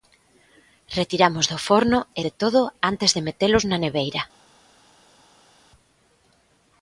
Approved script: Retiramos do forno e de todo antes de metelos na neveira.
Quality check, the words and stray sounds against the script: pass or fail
pass